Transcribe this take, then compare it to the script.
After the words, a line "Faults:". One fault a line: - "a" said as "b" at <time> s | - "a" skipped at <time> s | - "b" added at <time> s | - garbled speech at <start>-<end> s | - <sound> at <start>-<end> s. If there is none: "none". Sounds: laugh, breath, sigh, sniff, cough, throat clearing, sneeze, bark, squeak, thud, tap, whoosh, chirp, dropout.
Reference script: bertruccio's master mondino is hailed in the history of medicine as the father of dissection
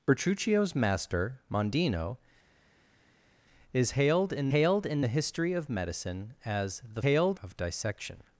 bertruccio's master mondino is hailed in hailed in the history of medicine as the hailed of dissection
Faults:
- "hailed in" added at 4.5 s
- "father" said as "hailed" at 7.0 s